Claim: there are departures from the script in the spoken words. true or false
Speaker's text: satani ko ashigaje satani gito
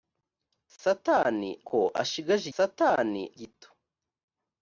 false